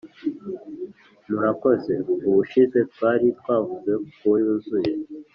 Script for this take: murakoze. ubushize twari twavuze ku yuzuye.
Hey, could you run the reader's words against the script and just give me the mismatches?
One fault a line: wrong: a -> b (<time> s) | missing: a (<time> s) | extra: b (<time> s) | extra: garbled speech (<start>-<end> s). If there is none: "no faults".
no faults